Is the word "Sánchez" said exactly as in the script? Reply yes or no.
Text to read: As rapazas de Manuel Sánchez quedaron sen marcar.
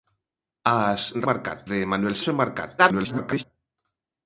no